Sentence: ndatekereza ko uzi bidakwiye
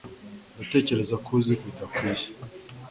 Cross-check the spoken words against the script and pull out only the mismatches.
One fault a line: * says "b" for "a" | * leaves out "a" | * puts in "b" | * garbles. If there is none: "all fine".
all fine